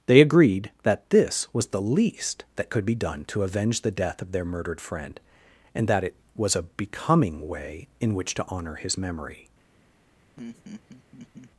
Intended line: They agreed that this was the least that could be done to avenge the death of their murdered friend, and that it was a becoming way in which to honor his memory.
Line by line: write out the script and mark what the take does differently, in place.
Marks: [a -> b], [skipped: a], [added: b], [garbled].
They agreed that this was the least that could be done to avenge the death of their murdered friend, and that it was a becoming way in which to honor his memory.